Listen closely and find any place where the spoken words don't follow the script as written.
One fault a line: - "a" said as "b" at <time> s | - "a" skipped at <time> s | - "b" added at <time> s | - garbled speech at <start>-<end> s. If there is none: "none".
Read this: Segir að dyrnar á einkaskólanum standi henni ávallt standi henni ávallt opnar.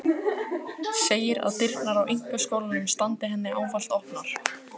- "standi henni ávallt" skipped at 4.0 s